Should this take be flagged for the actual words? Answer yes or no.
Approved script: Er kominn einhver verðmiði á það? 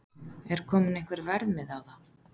no